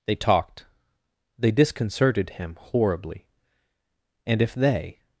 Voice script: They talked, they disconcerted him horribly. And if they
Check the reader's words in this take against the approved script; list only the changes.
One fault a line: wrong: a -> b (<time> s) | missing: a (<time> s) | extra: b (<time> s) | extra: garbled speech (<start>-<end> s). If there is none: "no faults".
no faults